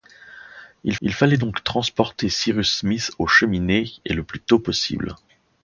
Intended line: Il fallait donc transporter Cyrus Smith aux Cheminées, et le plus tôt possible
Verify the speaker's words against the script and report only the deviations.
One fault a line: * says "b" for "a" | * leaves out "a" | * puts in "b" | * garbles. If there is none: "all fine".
* puts in "il"